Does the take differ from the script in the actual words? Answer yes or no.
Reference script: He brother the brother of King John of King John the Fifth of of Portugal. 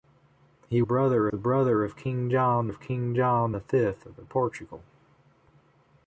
no